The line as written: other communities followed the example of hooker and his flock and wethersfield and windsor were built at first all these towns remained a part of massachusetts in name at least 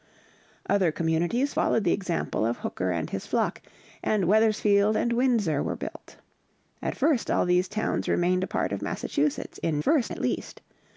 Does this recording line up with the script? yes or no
no